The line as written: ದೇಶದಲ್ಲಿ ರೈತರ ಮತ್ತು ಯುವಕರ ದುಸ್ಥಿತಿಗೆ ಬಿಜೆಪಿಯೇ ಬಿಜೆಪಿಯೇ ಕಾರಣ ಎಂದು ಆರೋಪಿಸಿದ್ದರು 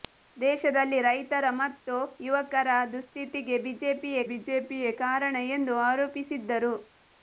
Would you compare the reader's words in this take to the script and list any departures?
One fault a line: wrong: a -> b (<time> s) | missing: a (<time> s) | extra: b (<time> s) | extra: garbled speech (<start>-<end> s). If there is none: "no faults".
no faults